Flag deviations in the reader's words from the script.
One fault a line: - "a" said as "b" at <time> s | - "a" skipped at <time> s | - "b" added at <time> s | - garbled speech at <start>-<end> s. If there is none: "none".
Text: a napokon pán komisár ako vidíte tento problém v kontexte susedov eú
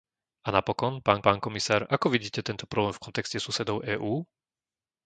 - "pán" added at 1.2 s